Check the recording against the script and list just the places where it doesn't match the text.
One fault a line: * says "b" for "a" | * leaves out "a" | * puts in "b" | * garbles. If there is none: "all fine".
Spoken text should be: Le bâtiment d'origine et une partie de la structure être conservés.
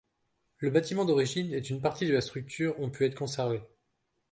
* puts in "ont pu"